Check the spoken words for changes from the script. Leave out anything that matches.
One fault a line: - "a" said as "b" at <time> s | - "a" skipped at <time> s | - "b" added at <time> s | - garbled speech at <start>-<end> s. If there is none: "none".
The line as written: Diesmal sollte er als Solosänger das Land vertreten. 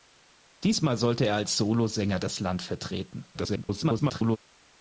- garbled speech at 3.3-4.4 s